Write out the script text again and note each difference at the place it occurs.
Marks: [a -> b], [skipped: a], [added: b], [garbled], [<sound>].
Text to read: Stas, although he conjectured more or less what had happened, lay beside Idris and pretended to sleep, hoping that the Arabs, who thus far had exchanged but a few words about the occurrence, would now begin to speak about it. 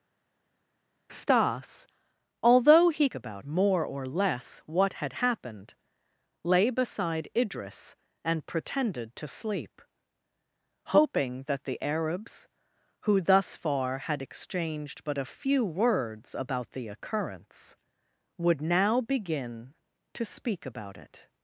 Stas, although he [conjectured -> about] more or less what had happened, lay beside Idris and pretended to sleep, hoping that the Arabs, who thus far had exchanged but a few words about the occurrence, would now begin to speak about it.